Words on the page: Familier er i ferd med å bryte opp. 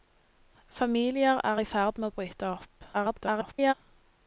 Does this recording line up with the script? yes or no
no